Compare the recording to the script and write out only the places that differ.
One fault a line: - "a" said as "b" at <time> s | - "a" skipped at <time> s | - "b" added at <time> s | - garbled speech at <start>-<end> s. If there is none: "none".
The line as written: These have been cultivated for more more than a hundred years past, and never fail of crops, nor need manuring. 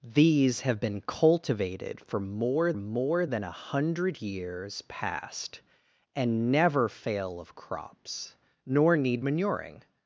none